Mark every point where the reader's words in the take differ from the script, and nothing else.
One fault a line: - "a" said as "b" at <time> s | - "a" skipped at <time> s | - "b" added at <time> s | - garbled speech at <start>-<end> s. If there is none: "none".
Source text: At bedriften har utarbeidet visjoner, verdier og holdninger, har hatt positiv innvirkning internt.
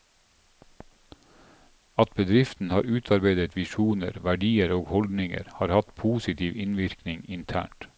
none